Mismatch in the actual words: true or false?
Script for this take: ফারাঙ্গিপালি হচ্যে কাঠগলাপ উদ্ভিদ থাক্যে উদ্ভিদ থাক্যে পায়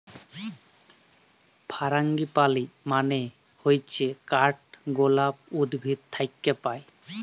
true